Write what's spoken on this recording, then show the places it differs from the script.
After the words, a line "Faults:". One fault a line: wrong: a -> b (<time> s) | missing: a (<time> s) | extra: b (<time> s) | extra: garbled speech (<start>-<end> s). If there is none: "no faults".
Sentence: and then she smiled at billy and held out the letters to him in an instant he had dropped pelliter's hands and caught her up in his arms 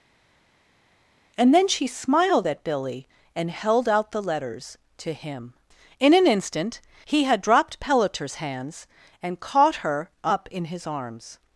and then she smiled at billy and held out the letters to him in an instant he had dropped pelliter's hands and caught her up in his arms
Faults:
no faults